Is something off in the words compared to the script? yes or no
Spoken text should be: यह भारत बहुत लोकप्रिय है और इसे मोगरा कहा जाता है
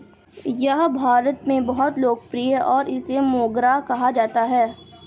yes